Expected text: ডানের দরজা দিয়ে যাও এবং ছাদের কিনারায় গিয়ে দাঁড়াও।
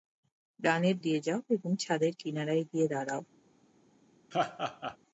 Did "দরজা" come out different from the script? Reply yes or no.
yes